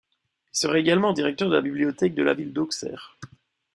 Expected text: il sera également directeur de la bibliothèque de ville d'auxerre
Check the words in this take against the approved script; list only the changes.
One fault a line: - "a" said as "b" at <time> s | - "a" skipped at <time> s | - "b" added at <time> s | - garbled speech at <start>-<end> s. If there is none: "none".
- "la" added at 2.2 s